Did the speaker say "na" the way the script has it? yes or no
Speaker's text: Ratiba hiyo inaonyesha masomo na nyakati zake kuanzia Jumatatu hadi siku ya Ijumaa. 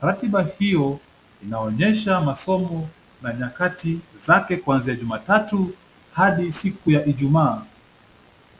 yes